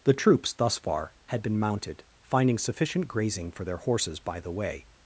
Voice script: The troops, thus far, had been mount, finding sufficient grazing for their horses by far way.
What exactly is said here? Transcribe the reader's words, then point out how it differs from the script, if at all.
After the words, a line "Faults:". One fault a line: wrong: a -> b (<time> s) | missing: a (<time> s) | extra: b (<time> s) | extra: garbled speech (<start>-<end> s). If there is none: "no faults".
The troops, thus far, had been mounted, finding sufficient grazing for their horses by the way.
Faults:
wrong: mount -> mounted (1.6 s)
wrong: far -> the (4.4 s)